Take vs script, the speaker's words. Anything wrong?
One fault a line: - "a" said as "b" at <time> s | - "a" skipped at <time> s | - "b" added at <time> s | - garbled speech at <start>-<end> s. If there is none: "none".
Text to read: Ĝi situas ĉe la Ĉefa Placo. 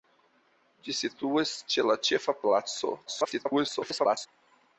- garbled speech at 3.1-4.3 s